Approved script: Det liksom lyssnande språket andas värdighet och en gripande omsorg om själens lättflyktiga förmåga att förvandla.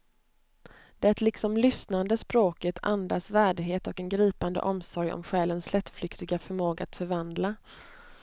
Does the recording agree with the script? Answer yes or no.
yes